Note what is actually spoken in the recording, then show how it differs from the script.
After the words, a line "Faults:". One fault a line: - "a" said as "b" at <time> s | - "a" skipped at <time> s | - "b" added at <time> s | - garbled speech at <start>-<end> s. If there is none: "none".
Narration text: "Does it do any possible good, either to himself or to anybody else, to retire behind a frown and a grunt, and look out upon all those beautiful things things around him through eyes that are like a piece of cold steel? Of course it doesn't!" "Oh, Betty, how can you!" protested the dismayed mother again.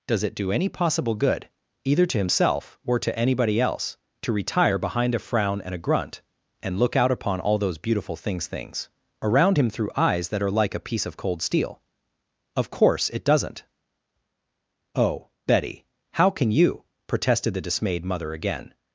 "Does it do any possible good, either to himself or to anybody else, to retire behind a frown and a grunt, and look out upon all those beautiful things things around him through eyes that are like a piece of cold steel? Of course it doesn't!" "Oh, Betty, how can you!" protested the dismayed mother again.
Faults:
none